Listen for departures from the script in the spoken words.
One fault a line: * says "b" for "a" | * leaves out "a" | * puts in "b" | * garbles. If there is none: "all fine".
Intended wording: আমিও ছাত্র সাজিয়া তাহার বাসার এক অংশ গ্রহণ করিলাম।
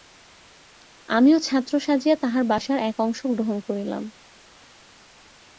all fine